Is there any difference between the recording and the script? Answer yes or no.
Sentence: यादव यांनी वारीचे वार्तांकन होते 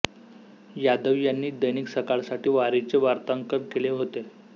yes